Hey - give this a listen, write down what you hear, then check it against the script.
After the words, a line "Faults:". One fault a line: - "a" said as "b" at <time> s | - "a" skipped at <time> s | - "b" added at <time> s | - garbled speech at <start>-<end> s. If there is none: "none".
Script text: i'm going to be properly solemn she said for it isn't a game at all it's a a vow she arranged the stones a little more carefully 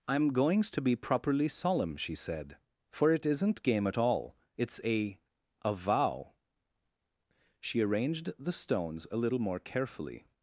i'm goings to be properly solemn she said for it isn't game at all it's a a vow she arranged the stones a little more carefully
Faults:
- "going" said as "goings" at 0.3 s
- "a" skipped at 3.6 s